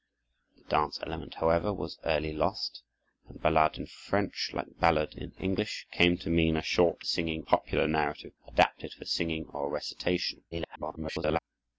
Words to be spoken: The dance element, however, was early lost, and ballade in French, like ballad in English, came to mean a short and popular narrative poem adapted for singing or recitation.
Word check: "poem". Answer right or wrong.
wrong